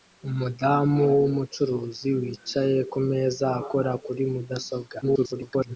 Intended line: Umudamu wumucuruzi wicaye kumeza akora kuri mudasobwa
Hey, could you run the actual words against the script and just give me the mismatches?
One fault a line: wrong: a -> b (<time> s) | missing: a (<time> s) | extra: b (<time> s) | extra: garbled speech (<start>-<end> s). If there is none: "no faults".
extra: garbled speech (5.0-5.8 s)